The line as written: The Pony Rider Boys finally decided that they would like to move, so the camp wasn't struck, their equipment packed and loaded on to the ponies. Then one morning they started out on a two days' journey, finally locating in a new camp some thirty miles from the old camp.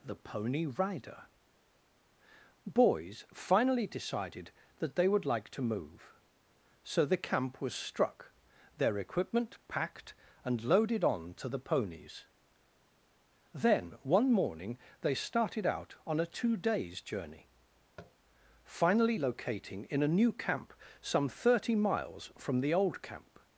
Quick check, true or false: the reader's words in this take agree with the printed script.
false